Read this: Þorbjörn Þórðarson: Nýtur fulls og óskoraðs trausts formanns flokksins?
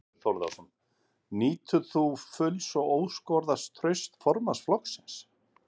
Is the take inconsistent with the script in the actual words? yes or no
yes